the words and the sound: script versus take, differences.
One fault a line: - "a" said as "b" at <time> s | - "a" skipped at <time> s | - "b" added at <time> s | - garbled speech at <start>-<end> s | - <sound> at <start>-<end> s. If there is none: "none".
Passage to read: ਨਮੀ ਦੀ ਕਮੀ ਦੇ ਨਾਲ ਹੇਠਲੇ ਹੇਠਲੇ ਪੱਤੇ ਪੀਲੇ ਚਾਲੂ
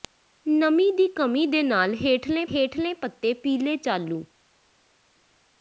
none